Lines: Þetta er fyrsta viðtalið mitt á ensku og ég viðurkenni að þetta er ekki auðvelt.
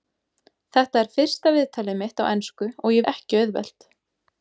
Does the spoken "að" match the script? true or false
false